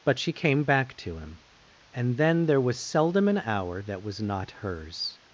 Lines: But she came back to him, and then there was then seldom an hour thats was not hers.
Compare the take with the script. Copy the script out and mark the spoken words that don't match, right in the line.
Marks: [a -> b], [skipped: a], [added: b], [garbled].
But she came back to him, and then there was [skipped: then] seldom an hour [thats -> that] was not hers.